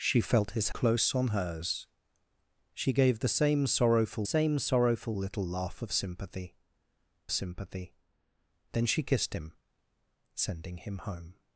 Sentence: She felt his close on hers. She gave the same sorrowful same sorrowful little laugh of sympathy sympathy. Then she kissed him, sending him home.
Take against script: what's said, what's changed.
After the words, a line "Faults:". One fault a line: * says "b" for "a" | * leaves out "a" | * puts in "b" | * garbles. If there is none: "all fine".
She felt his close on hers. She gave the same sorrowful same sorrowful little laugh of sympathy sympathy. Then she kissed him, sending him home.
Faults:
all fine